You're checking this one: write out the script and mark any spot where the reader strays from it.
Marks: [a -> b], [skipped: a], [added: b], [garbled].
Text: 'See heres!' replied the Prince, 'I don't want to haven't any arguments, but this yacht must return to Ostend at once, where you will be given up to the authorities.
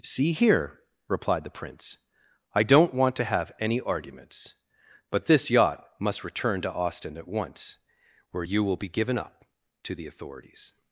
'See [heres!' -> here] replied the Prince, 'I don't want to [haven't -> have] any arguments, but this yacht must return to Ostend at once, where you will be given up to the authorities.